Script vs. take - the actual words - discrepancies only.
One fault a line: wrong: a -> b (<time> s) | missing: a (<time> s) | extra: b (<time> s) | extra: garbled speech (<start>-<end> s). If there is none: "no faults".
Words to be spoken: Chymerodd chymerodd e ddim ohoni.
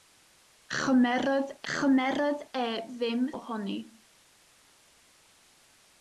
no faults